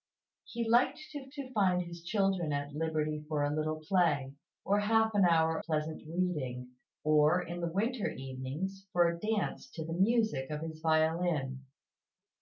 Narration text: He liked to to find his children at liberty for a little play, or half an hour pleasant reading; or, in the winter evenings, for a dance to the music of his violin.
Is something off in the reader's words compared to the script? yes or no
no